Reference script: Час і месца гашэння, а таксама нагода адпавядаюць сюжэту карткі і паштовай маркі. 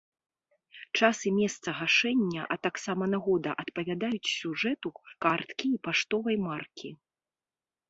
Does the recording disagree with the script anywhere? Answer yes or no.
no